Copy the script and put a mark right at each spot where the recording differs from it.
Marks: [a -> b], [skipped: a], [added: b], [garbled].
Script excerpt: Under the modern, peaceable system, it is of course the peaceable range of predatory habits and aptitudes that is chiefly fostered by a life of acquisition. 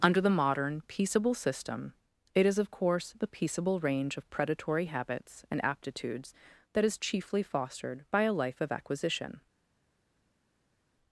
Under the modern, peaceable system, it is of course the peaceable range of predatory habits and aptitudes that is chiefly fostered by a life of acquisition.